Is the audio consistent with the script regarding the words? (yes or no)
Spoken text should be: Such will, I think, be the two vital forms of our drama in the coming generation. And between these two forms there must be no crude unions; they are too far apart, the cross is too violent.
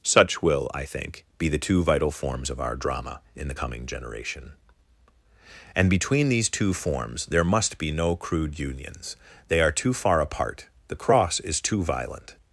yes